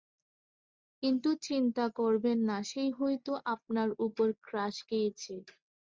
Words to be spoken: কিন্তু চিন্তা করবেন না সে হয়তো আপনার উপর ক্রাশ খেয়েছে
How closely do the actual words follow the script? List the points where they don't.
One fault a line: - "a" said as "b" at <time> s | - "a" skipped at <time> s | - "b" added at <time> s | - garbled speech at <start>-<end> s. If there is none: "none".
none